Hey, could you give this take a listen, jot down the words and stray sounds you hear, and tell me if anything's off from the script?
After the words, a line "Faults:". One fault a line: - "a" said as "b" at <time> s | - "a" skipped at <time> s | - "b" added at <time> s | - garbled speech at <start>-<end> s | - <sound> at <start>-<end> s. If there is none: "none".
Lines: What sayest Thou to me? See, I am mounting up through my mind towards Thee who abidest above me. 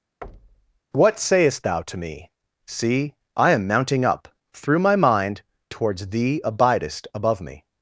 What sayest Thou to me? See, I am mounting up through my mind towards Thee abidest above me.
Faults:
- thud at 0.2-0.8 s
- "who" skipped at 6.4 s